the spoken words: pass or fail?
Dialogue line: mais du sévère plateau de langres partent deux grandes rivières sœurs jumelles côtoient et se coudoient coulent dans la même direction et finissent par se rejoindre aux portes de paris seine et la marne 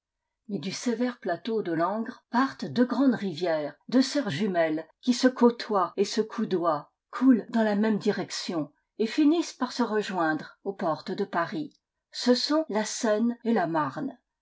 fail